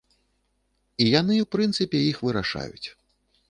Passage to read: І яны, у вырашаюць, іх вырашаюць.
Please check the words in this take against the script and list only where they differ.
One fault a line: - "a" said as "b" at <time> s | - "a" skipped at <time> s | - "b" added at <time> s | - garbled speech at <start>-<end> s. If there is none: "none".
- "вырашаюць" said as "прынцыпе" at 1.6 s